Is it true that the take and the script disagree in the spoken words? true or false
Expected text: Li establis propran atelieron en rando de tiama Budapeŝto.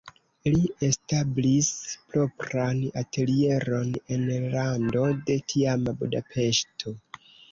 false